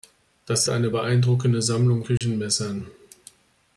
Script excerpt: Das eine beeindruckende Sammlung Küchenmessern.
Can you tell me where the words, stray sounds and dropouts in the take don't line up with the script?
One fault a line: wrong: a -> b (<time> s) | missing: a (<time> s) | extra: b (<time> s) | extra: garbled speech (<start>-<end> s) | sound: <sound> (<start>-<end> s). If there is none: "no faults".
sound: dropout (2.2-2.2 s)